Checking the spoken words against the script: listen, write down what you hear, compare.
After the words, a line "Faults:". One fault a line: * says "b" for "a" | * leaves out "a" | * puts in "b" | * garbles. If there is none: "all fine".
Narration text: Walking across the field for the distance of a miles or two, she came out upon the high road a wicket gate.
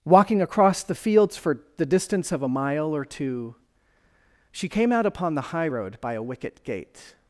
Walking across the fields for the distance of a mile or two, she came out upon the high road by a wicket gate.
Faults:
* says "fields" for "field"
* says "mile" for "miles"
* puts in "by"